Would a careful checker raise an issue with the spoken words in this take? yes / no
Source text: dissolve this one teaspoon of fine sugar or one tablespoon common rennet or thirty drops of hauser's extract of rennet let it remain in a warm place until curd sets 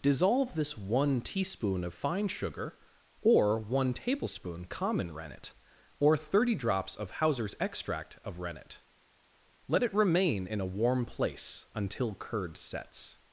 no